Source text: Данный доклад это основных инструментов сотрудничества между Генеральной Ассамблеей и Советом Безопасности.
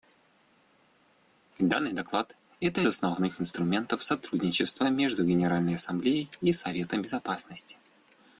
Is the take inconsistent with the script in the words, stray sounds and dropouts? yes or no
no